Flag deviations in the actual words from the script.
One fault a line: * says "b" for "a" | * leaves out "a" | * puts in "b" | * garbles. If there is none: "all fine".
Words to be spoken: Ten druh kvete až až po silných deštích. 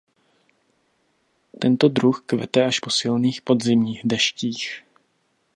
* says "Tento" for "Ten"
* leaves out "až"
* puts in "podzimních"